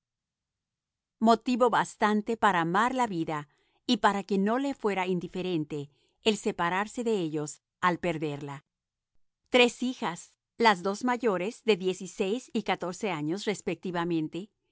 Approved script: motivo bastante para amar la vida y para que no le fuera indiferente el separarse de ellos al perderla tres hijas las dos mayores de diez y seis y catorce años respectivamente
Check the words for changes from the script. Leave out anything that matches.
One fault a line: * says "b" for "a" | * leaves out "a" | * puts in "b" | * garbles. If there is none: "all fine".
all fine